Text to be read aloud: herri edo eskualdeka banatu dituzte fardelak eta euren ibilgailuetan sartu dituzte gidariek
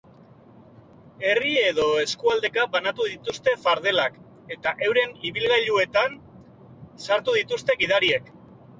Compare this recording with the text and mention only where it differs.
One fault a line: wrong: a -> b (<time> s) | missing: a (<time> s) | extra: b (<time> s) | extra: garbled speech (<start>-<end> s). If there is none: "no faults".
no faults